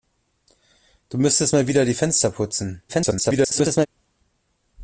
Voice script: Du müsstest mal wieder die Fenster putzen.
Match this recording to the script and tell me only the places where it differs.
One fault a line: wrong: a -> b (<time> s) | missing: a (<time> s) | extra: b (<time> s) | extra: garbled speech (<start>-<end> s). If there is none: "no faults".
extra: garbled speech (2.9-3.9 s)